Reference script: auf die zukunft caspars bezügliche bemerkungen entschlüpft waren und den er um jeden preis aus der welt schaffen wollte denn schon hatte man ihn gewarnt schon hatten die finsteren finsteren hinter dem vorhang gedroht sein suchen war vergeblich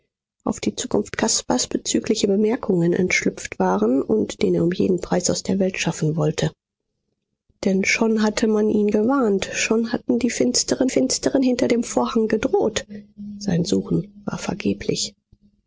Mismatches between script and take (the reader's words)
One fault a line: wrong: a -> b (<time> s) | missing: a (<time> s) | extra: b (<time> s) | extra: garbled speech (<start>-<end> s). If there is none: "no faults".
no faults